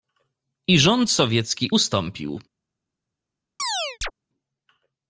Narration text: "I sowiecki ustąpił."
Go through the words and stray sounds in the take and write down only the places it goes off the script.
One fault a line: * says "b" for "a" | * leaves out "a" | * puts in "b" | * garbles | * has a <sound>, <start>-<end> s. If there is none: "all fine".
* puts in "rząd"
* has a chirp, 3.6-4.1 s